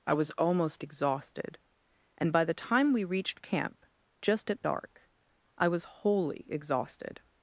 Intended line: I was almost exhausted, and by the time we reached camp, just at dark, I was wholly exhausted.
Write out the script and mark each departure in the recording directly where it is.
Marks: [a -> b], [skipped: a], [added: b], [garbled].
I was almost exhausted, and by the time we reached camp, just at dark, I was wholly exhausted.